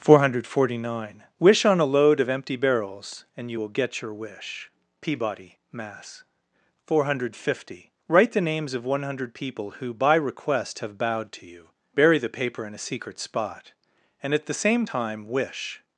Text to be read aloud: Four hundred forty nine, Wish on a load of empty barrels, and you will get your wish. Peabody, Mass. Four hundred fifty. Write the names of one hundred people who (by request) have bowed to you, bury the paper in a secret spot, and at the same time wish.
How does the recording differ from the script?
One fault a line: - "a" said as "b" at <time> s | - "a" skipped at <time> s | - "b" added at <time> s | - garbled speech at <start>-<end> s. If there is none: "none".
none